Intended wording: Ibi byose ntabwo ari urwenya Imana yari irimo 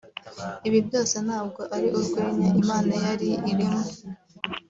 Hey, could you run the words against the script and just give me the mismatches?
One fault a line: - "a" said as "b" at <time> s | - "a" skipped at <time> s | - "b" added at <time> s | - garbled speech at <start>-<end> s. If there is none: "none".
none